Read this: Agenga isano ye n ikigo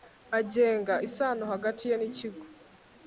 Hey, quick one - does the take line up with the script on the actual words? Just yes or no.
no